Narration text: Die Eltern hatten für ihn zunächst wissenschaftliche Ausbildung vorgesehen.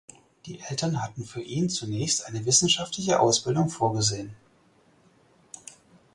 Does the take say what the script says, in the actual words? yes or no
no